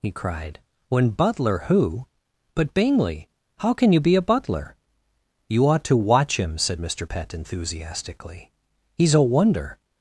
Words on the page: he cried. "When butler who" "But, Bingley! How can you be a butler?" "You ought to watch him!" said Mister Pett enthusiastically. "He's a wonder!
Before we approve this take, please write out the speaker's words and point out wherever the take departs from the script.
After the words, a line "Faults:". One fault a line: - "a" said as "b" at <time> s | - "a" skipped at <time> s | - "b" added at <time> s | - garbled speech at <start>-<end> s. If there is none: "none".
he cried. "When butler who" "But, Bingley! How can you be a butler?" "You ought to watch him!" said Mister Pett enthusiastically. "He's a wonder!
Faults:
none